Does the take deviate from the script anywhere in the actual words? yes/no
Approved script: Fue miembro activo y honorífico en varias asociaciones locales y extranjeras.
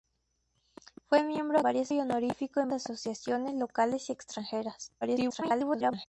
yes